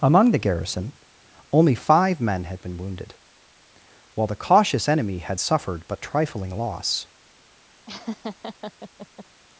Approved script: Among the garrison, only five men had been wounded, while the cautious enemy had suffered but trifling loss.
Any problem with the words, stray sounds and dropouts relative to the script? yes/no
yes